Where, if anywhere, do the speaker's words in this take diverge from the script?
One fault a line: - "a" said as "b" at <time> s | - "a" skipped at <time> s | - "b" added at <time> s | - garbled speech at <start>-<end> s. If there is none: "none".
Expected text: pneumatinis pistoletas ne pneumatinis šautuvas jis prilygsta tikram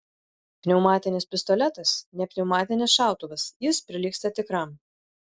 none